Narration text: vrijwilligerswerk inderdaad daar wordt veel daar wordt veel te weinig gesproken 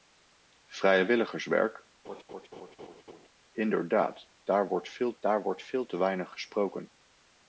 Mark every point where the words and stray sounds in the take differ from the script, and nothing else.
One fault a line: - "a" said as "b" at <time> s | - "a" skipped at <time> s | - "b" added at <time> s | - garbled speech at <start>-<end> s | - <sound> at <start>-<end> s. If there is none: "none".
- laugh at 2.0-3.3 s